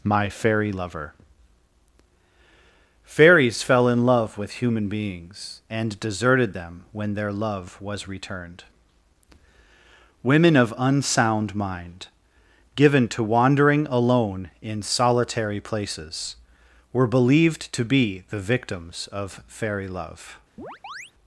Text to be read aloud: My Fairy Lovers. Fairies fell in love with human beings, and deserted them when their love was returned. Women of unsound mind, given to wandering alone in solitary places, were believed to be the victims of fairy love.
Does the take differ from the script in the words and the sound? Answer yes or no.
yes